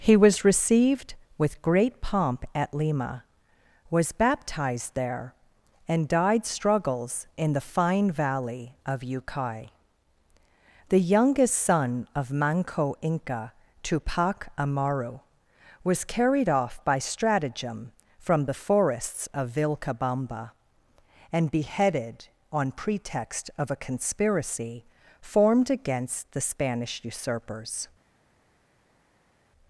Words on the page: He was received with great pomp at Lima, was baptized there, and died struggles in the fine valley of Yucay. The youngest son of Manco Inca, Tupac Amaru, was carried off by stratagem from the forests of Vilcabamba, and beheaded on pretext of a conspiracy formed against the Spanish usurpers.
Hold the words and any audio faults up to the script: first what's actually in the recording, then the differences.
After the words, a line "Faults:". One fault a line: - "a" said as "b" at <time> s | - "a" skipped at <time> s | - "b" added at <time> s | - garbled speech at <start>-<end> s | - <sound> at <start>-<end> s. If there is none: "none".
He was received with great pomp at Lima, was baptized there, and died struggles in the fine valley of Yucay. The youngest son of Manco Inca, Tupac Amaru, was carried off by stratagem from the forests of Vilcabamba, and beheaded on pretext of a conspiracy formed against the Spanish usurpers.
Faults:
none